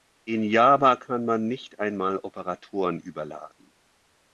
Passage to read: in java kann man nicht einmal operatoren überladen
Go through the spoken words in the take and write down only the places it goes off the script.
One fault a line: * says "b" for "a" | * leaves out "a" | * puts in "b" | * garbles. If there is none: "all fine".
all fine